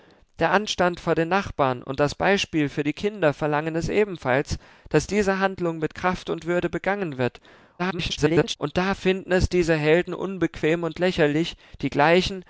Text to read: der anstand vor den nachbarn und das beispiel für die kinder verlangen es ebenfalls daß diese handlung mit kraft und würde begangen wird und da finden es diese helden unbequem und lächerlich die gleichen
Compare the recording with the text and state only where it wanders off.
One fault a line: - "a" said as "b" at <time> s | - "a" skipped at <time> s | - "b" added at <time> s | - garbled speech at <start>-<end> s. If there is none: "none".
- garbled speech at 7.8-8.6 s